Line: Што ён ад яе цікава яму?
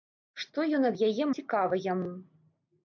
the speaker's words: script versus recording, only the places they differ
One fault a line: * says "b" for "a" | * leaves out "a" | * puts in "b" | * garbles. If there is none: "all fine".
all fine